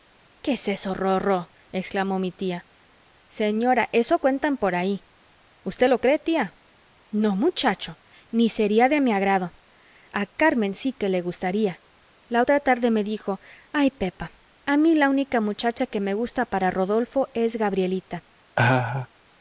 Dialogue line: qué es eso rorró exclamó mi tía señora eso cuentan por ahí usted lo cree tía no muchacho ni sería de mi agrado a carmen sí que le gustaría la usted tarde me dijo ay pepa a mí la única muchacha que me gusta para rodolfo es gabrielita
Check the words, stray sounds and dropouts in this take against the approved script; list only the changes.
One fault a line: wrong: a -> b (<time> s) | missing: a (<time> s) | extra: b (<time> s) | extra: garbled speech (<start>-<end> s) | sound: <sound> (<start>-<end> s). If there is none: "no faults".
wrong: usted -> otra (12.4 s)
sound: laugh (18.6-19.1 s)